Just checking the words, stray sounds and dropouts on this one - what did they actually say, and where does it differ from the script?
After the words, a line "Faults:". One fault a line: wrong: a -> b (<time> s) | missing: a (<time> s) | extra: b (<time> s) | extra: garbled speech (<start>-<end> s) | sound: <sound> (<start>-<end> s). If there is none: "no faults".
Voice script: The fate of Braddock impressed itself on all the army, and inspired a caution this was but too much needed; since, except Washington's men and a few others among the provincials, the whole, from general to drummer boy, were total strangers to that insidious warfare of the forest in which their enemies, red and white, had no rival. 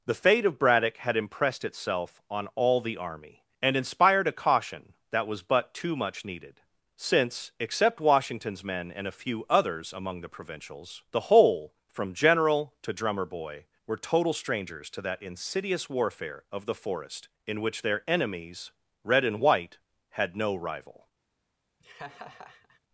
The fate of Braddock had impressed itself on all the army, and inspired a caution that was but too much needed; since, except Washington's men and a few others among the provincials, the whole, from general to drummer boy, were total strangers to that insidious warfare of the forest in which their enemies, red and white, had no rival.
Faults:
extra: had (1.0 s)
wrong: this -> that (5.1 s)
sound: laugh (21.8-22.8 s)